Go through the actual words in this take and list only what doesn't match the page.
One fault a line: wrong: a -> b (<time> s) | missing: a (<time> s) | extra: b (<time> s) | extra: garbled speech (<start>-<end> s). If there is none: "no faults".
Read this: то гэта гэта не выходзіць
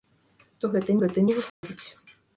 no faults